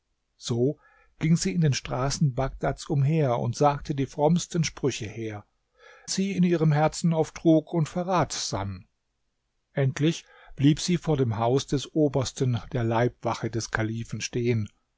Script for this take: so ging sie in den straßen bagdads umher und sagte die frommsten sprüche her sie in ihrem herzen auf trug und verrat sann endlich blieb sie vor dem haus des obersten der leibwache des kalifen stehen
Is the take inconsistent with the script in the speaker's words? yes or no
no